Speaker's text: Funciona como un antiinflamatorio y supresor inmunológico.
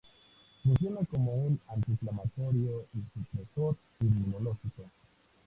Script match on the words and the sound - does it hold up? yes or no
yes